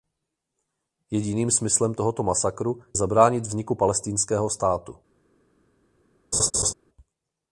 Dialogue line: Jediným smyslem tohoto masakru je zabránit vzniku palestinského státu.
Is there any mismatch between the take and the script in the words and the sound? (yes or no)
yes